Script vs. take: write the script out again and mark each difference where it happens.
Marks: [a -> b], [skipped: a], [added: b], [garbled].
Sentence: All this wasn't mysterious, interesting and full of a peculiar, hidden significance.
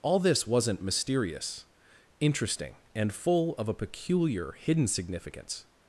All this wasn't mysterious, interesting and full of a peculiar, hidden significance.